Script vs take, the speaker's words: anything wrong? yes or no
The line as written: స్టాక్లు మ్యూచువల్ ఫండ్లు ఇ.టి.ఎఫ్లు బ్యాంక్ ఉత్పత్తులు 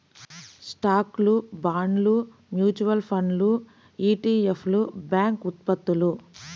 yes